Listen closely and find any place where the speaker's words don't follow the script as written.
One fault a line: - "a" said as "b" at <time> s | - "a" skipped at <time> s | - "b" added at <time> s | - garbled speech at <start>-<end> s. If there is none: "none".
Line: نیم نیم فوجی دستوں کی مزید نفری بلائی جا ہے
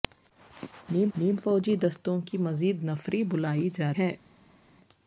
none